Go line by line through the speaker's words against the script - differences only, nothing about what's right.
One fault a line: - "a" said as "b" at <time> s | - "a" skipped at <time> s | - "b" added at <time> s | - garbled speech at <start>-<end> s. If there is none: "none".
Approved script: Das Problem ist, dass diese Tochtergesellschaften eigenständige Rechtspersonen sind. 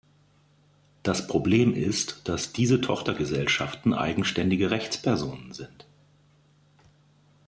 none